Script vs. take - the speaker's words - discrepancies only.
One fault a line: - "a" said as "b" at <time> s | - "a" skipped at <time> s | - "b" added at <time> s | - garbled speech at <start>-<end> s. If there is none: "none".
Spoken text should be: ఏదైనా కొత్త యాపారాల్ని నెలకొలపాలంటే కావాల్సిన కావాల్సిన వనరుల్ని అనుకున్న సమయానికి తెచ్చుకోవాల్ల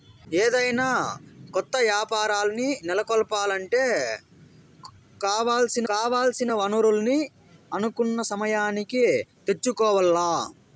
none